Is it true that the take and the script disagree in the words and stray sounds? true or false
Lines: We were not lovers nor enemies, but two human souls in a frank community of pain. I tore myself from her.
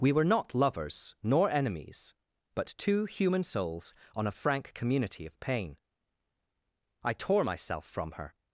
true